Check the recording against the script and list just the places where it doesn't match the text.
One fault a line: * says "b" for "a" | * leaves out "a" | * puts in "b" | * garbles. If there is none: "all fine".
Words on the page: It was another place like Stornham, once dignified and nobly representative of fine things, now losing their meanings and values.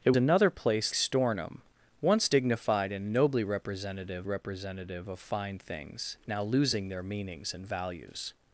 * leaves out "was"
* leaves out "like"
* puts in "representative"